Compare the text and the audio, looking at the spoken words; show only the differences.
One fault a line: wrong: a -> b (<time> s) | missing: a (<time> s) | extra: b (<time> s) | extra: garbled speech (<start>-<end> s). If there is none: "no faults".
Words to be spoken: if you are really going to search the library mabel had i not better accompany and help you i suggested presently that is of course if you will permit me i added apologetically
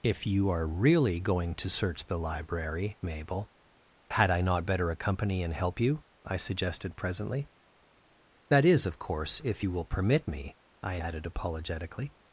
no faults